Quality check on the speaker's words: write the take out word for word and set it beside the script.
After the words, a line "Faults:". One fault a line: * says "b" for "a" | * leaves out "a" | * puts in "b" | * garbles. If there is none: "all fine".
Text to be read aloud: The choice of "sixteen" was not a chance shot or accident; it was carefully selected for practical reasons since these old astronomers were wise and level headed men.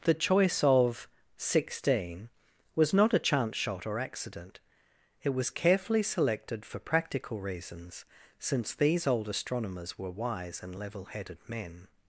The choice of "sixteen" was not a chance shot or accident; it was carefully selected for practical reasons since these old astronomers were wise and level headed men.
Faults:
all fine